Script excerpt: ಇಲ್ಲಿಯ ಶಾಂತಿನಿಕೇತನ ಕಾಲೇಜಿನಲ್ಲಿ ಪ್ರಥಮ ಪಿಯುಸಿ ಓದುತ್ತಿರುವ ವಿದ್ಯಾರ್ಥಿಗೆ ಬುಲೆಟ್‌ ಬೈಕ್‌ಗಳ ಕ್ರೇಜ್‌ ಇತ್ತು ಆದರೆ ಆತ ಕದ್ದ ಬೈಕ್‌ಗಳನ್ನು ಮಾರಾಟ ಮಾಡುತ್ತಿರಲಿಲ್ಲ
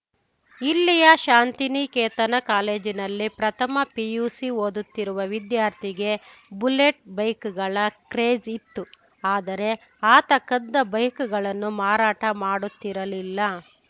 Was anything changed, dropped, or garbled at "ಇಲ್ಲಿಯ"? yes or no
no